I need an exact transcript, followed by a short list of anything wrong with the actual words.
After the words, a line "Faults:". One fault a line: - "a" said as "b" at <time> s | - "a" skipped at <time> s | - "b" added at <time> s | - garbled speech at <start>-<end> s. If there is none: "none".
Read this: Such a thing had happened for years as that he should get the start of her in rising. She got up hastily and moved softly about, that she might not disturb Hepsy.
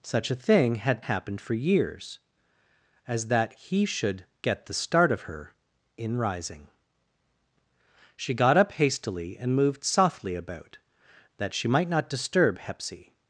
Such a thing had happened for years as that he should get the start of her in rising. She got up hastily and moved softly about, that she might not disturb Hepsy.
Faults:
none